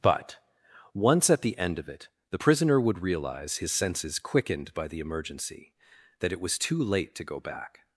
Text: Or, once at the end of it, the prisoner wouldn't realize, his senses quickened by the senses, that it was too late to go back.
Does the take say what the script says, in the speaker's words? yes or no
no